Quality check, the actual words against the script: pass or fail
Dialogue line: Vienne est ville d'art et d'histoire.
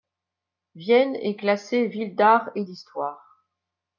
fail